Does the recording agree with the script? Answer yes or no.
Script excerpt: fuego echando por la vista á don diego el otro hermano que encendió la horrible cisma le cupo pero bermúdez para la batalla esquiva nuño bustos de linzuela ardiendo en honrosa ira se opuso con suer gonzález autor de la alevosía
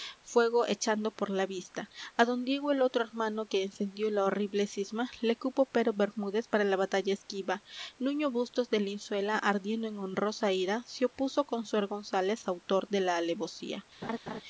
yes